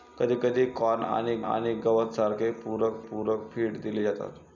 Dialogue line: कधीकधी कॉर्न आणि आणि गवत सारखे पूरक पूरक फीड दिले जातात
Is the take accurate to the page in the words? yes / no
yes